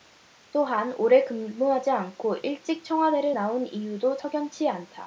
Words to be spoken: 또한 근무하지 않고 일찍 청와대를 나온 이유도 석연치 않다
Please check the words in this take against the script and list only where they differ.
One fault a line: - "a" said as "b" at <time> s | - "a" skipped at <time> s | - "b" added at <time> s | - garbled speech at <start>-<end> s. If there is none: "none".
- "오래" added at 1.0 s